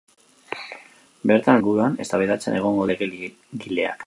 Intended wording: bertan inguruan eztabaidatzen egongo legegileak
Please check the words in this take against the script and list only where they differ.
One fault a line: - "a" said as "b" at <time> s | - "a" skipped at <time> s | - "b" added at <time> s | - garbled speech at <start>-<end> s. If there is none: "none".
none